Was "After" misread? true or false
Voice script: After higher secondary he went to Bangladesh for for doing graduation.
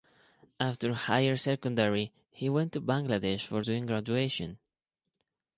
false